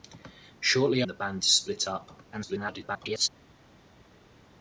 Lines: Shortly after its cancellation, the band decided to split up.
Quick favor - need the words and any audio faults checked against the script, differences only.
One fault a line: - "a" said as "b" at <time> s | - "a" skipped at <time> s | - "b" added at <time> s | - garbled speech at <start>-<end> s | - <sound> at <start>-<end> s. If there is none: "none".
- "after its cancellation" skipped at 1.0 s
- "decided" skipped at 1.4 s
- garbled speech at 2.3-3.3 s